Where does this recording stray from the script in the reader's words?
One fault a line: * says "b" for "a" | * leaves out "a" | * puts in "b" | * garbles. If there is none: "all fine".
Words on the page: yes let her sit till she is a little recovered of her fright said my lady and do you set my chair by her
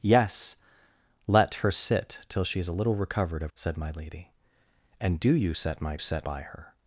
* leaves out "her fright"
* says "set" for "chair"